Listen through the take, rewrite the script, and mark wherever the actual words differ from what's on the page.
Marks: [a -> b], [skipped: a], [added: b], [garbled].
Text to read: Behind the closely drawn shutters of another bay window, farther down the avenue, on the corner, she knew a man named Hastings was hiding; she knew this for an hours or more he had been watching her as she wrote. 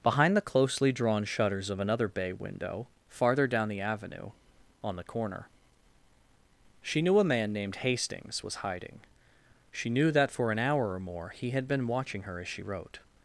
Behind the closely drawn shutters of another bay window, farther down the avenue, on the corner, she knew a man named Hastings was hiding; she knew [this -> that] for an [hours -> hour] or more he had been watching her as she wrote.